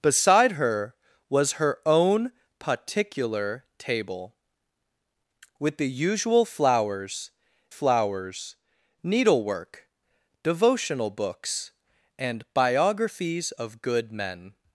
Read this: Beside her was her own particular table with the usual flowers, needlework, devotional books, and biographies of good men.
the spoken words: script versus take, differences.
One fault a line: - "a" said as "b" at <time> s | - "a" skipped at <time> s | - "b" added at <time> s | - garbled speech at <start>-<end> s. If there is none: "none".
- "flowers" added at 7.7 s